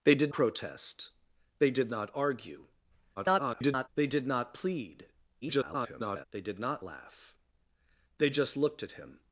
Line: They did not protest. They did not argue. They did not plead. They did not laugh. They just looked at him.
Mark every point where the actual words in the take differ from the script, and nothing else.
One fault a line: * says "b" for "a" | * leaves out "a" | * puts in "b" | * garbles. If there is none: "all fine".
* leaves out "not"
* garbles
* garbles